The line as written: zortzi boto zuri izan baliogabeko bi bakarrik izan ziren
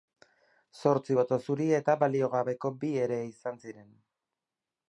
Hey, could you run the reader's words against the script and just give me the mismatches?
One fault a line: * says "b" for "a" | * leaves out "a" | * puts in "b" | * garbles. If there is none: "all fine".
* says "eta" for "izan"
* says "ere" for "bakarrik"